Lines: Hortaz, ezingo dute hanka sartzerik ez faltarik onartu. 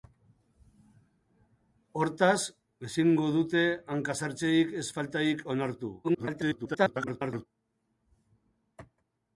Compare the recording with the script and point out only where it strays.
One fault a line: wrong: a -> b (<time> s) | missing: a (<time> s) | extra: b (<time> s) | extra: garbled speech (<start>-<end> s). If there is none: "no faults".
extra: garbled speech (6.0-7.5 s)